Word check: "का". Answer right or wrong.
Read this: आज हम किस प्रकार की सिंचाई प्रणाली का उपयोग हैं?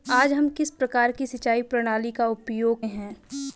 right